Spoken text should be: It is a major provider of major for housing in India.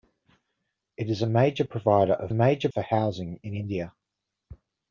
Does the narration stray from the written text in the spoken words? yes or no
no